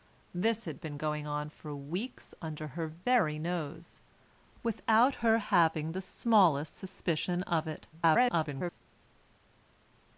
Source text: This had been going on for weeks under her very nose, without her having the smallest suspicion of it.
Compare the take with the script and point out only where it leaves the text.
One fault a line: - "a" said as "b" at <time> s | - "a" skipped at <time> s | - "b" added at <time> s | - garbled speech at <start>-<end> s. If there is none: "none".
- garbled speech at 7.9-8.8 s